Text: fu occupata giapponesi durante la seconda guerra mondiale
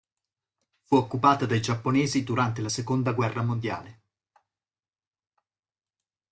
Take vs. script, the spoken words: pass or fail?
fail